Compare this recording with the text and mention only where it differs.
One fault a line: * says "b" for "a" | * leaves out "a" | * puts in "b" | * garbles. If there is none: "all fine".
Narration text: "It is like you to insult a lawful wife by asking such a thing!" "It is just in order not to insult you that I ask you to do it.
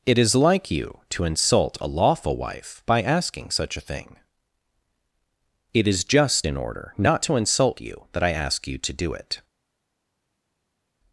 all fine